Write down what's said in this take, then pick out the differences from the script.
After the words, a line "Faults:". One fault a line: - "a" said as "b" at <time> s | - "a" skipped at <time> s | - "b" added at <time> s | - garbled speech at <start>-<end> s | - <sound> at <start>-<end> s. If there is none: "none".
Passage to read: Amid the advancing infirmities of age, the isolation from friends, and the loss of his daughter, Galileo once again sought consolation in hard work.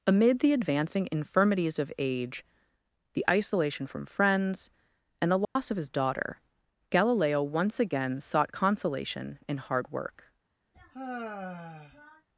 Amid the advancing infirmities of age, the isolation from friends, and the loss of his daughter, Galileo once again sought consolation in hard work.
Faults:
- dropout at 5.4-5.6 s
- sigh at 10.7-12.3 s